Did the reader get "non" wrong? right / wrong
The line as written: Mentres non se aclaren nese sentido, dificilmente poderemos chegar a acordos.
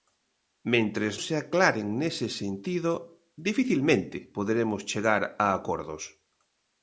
wrong